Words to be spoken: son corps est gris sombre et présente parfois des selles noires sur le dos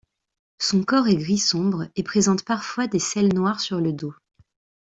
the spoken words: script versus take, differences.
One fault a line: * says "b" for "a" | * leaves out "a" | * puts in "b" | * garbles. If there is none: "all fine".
all fine